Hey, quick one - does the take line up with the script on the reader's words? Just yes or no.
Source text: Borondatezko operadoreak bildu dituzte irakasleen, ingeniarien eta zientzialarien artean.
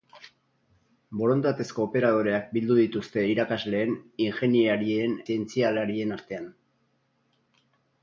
no